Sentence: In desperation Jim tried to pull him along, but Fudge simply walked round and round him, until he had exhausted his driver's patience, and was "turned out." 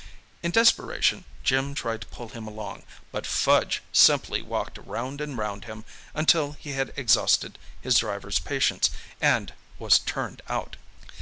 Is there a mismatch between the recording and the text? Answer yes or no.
no